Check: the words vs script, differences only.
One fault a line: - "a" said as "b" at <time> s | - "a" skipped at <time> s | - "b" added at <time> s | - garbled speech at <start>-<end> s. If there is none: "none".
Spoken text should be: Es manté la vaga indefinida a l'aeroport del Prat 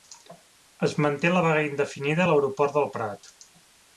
none